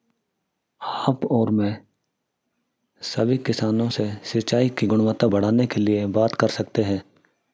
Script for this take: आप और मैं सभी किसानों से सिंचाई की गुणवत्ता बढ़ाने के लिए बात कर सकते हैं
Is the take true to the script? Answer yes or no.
yes